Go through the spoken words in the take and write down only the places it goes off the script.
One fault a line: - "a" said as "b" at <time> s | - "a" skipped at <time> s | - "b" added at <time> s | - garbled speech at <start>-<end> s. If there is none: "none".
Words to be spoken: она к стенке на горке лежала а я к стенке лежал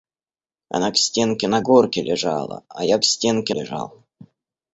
none